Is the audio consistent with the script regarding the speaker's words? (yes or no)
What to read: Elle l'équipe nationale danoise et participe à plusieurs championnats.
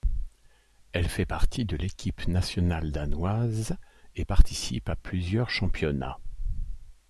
no